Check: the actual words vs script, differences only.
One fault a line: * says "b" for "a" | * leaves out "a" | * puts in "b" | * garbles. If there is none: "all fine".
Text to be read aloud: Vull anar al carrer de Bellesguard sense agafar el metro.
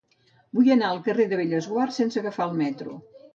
all fine